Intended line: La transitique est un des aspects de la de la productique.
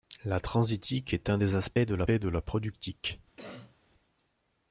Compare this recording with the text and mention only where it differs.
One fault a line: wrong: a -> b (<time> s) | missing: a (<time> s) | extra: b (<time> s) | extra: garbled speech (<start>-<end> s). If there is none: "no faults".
no faults